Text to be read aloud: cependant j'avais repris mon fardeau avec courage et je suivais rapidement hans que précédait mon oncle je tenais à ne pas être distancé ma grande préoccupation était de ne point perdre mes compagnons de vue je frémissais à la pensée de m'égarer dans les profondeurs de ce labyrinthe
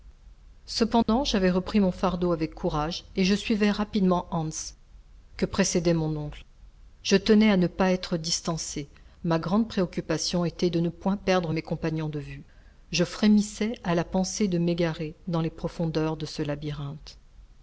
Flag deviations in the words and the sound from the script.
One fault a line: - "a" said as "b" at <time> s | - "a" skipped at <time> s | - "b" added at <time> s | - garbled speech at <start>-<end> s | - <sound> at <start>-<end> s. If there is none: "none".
- dropout at 1.0-1.1 s